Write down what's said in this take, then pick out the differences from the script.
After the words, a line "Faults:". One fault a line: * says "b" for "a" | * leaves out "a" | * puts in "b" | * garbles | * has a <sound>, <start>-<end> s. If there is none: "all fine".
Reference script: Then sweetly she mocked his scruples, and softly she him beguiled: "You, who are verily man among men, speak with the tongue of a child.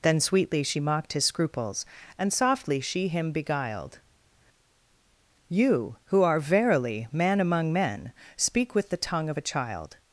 Then sweetly she mocked his scruples, and softly she him beguiled: "You, who are verily man among men, speak with the tongue of a child.
Faults:
all fine